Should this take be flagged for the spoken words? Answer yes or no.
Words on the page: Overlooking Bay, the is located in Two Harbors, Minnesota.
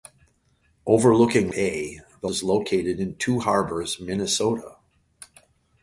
no